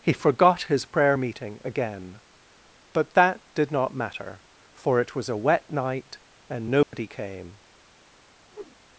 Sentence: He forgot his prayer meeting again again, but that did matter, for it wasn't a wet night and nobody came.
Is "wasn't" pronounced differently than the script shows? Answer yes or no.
yes